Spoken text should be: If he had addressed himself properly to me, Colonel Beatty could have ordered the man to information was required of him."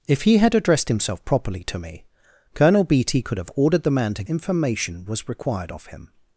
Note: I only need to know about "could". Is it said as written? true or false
true